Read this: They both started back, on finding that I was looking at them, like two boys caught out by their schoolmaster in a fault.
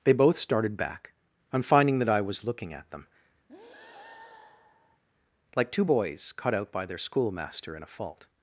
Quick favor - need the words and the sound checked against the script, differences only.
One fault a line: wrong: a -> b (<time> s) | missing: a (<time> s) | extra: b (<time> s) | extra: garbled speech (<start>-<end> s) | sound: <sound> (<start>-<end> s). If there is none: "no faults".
sound: breath (3.5-5.0 s)